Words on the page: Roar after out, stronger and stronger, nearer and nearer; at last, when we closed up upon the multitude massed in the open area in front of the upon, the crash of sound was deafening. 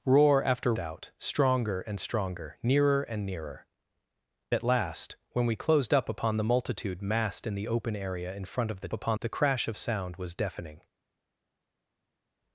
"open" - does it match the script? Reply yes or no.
yes